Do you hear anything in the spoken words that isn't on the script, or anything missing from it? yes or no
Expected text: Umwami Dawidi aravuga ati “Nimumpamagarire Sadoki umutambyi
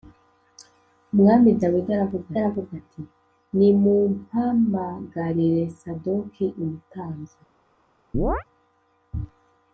yes